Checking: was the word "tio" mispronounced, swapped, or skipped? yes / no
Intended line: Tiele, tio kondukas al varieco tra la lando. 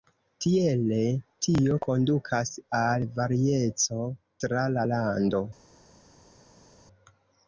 no